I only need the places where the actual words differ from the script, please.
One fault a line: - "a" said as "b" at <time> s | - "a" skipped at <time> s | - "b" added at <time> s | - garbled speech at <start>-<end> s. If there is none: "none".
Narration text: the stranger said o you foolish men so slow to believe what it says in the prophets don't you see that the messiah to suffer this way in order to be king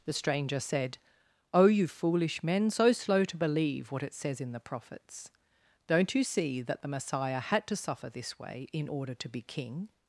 - "had" added at 7.4 s